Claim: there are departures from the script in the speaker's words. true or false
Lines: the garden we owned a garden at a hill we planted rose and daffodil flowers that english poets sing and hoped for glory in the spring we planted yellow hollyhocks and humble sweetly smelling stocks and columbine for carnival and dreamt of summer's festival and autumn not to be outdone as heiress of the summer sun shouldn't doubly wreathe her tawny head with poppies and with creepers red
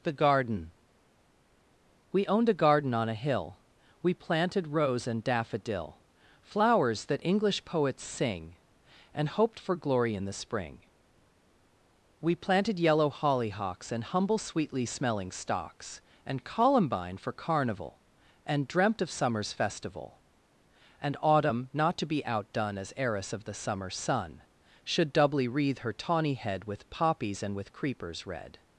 true